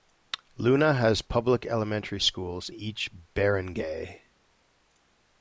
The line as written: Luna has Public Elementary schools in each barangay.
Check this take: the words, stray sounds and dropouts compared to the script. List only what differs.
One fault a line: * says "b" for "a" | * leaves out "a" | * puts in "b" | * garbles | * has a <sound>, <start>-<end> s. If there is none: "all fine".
* leaves out "in"